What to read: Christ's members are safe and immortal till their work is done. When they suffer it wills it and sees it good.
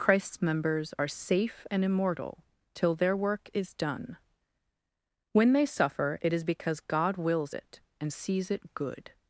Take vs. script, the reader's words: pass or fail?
fail